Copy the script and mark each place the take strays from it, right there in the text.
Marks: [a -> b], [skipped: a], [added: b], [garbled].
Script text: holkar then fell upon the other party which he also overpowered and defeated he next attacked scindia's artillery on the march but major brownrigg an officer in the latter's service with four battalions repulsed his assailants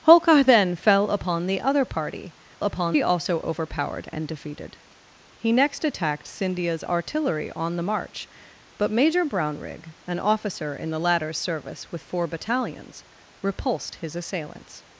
holkar then fell upon the other party [which -> upon] he also overpowered and defeated he next attacked scindia's artillery on the march but major brownrigg an officer in the latter's service with four battalions repulsed his assailants